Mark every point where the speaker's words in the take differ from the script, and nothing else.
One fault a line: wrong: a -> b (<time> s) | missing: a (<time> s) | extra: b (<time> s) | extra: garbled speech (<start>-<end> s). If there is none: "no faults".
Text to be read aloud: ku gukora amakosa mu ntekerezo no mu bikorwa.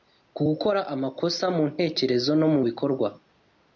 no faults